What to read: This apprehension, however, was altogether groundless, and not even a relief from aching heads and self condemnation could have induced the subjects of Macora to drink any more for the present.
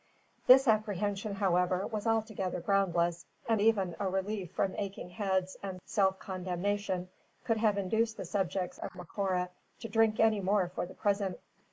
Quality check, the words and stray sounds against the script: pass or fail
fail